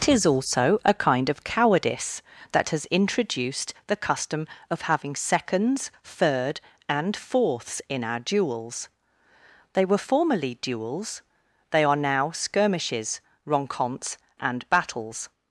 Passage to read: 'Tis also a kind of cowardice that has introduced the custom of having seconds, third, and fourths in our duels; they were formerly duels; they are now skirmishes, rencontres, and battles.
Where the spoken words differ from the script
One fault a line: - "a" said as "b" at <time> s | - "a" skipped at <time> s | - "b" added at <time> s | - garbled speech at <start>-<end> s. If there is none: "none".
none